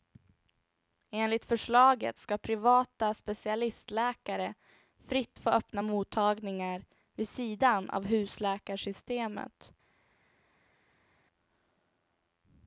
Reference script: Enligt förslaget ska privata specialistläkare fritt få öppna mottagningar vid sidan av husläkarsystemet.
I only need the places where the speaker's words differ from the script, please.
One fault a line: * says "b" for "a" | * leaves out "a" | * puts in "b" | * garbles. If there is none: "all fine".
all fine